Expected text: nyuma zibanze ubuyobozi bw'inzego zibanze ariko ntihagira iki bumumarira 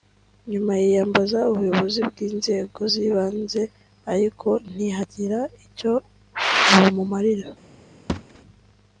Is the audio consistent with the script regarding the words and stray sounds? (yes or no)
no